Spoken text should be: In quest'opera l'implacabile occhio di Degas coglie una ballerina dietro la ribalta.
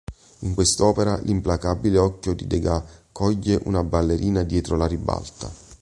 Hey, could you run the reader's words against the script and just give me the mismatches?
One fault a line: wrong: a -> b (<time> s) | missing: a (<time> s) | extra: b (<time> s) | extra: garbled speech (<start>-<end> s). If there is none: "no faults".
no faults